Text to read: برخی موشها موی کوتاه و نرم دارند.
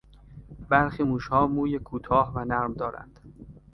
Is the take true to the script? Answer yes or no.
yes